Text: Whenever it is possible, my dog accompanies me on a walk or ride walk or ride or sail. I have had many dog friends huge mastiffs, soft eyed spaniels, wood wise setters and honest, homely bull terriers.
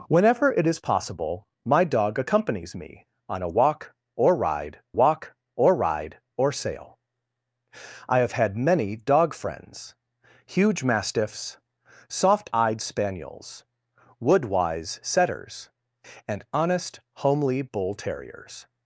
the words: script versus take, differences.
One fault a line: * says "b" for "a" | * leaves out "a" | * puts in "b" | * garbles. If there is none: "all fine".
all fine